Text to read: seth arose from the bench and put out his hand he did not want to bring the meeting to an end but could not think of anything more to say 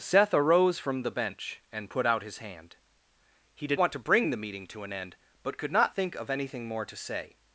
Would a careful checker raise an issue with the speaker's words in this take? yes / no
yes